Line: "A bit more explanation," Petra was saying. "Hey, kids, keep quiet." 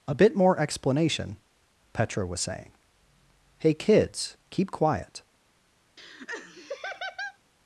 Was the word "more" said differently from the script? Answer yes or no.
no